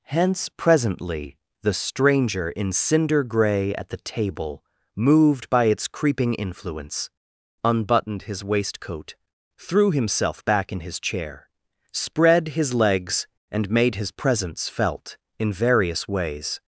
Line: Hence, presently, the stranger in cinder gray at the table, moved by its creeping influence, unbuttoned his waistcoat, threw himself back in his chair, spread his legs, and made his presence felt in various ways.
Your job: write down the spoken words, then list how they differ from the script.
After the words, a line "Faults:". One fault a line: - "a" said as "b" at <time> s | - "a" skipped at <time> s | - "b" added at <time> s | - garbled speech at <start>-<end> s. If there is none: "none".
Hence, presently, the stranger in cinder gray at the table, moved by its creeping influence, unbuttoned his waistcoat, threw himself back in his chair, spread his legs, and made his presence felt in various ways.
Faults:
none